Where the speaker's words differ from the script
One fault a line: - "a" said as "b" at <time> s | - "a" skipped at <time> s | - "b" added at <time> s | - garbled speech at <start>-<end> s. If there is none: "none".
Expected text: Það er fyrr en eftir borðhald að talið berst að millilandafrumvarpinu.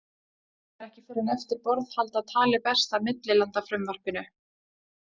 - "ekki" added at 0.9 s